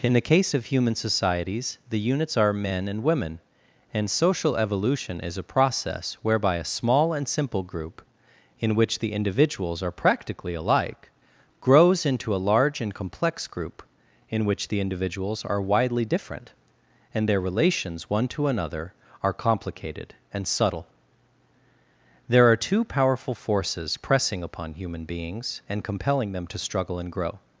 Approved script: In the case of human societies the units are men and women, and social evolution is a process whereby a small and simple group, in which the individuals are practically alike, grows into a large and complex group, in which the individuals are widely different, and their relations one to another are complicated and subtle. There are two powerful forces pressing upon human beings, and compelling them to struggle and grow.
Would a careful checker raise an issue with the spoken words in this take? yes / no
no